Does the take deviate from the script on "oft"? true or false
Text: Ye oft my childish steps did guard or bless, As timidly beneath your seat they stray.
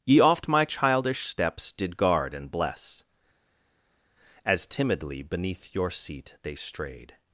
false